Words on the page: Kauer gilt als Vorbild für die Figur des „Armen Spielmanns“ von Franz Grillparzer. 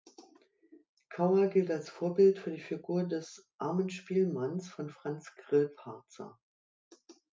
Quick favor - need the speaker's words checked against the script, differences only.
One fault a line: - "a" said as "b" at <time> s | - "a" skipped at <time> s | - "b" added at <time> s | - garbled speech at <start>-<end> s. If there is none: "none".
none